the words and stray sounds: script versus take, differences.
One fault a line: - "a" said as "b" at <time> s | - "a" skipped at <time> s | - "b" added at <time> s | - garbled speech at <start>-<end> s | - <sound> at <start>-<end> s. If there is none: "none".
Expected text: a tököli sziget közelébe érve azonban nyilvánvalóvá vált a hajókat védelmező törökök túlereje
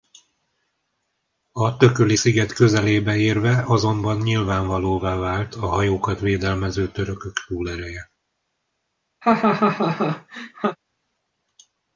- laugh at 9.2-10.8 s